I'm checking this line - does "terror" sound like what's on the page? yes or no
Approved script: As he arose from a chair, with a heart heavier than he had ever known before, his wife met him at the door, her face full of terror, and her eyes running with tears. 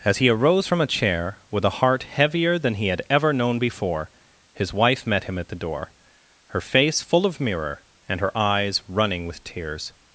no